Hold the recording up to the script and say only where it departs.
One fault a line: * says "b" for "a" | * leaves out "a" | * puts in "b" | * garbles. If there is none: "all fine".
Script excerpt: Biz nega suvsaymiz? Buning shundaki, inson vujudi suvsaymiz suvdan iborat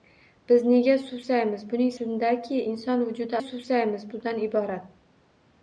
all fine